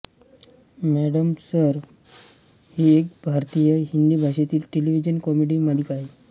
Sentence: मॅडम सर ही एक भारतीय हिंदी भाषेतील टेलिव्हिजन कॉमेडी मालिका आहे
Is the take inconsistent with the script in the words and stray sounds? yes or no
no